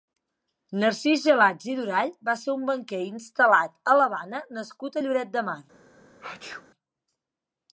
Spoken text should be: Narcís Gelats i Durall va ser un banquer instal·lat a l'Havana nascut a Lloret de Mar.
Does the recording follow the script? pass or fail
pass